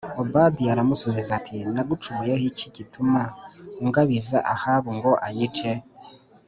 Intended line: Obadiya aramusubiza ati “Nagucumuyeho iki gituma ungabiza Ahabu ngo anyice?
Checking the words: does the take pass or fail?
pass